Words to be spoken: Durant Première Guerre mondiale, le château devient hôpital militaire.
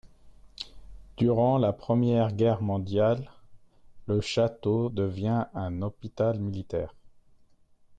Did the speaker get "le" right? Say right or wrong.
right